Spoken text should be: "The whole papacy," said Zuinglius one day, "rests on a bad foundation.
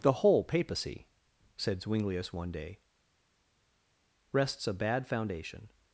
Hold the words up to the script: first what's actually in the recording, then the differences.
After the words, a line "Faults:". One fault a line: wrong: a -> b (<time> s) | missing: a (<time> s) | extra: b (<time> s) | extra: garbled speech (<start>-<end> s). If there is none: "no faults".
"The whole papacy," said Zuinglius one day, "rests a bad foundation.
Faults:
missing: on (4.7 s)